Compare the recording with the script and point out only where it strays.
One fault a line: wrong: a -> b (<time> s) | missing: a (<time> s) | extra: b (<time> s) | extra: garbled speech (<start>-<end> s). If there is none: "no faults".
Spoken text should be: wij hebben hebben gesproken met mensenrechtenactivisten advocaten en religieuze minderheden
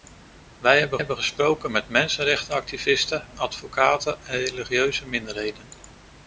no faults